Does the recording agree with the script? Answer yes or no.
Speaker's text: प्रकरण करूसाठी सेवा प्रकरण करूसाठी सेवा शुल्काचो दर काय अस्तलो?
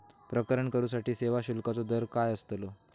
no